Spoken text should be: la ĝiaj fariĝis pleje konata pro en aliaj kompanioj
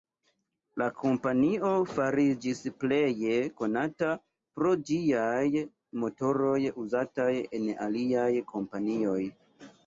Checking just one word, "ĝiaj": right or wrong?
wrong